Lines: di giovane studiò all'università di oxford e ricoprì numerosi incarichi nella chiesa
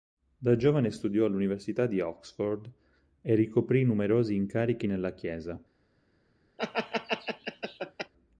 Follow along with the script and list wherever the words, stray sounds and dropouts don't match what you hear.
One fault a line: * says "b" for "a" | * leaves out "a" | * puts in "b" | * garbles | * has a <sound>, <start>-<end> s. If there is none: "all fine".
* says "da" for "di"
* has a laugh, 6.6-8.1 s